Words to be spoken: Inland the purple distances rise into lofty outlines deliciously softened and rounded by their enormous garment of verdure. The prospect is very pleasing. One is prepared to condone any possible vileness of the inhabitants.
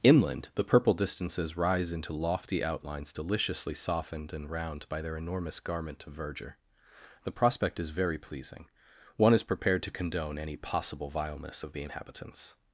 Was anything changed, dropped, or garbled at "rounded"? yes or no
yes